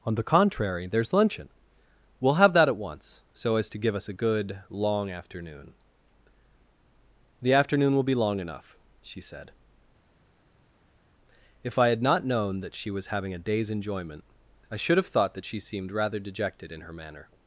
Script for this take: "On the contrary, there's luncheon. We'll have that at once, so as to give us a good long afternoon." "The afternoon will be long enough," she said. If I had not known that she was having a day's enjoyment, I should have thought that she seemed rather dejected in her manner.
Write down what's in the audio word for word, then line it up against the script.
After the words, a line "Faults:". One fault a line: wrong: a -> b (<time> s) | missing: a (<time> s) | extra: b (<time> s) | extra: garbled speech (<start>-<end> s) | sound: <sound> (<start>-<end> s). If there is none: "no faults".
"On the contrary, there's luncheon. We'll have that at once, so as to give us a good long afternoon." "The afternoon will be long enough," she said. If I had not known that she was having a day's enjoyment, I should have thought that she seemed rather dejected in her manner.
Faults:
no faults